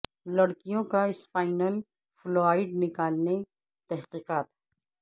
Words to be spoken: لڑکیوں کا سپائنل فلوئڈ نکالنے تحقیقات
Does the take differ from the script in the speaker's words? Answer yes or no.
no